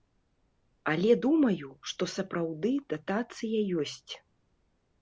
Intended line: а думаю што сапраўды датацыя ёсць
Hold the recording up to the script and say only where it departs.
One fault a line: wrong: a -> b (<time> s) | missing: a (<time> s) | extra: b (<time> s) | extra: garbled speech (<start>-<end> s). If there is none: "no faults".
wrong: а -> але (0.9 s)